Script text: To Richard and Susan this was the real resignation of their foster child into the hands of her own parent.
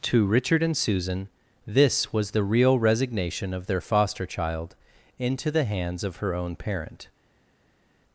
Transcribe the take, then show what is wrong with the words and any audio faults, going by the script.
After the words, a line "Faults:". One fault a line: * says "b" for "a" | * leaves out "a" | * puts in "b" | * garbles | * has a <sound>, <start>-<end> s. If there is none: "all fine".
To Richard and Susan this was the real resignation of their foster child into the hands of her own parent.
Faults:
all fine